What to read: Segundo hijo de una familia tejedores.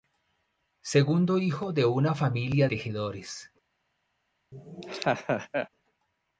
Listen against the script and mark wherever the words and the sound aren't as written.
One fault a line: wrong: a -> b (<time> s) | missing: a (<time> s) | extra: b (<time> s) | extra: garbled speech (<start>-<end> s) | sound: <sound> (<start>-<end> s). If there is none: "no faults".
sound: laugh (4.5-5.7 s)